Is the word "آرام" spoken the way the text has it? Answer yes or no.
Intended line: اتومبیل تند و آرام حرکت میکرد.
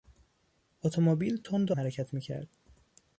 no